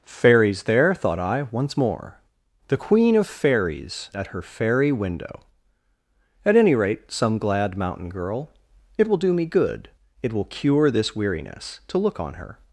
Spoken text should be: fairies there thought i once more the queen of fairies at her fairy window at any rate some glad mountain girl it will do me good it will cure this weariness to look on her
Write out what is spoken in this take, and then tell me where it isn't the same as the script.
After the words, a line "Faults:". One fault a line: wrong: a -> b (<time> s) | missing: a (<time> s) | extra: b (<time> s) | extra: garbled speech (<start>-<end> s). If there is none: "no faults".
fairies there thought i once more the queen of fairies at her fairy window at any rate some glad mountain girl it will do me good it will cure this weariness to look on her
Faults:
no faults